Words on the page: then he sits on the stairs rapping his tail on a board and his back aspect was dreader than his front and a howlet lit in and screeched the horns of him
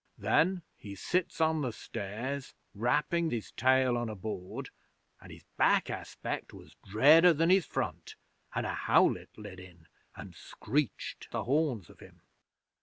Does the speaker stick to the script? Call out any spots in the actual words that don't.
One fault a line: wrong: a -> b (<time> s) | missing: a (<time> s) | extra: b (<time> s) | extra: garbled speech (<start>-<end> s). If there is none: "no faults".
no faults